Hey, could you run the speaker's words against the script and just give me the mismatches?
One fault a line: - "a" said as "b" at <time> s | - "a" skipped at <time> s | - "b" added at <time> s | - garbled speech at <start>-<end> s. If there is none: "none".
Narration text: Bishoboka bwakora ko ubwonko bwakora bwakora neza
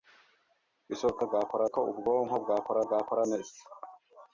none